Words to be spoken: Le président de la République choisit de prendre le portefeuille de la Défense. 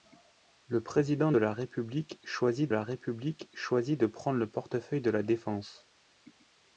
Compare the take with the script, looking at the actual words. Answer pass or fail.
fail